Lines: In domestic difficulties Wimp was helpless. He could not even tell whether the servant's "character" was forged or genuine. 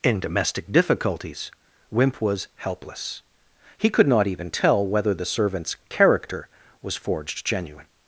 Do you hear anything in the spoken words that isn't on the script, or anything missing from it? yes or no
yes